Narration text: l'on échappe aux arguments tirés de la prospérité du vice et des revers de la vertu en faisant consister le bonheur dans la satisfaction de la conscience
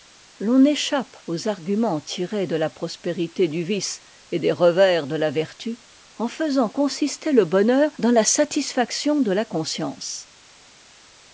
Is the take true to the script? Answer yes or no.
yes